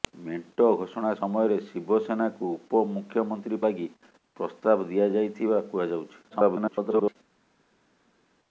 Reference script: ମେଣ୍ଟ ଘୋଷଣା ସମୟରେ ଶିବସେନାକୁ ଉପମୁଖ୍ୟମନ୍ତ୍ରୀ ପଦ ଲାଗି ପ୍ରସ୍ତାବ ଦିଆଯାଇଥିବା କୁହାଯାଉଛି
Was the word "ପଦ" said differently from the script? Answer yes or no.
yes